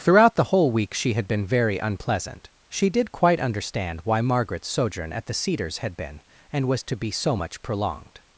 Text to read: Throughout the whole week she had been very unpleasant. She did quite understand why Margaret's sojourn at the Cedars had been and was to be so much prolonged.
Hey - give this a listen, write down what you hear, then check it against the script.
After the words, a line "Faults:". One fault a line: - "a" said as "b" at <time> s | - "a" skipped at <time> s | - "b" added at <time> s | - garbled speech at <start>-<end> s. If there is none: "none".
Throughout the whole week she had been very unpleasant. She did quite understand why Margaret's sojourn at the Cedars had been and was to be so much prolonged.
Faults:
none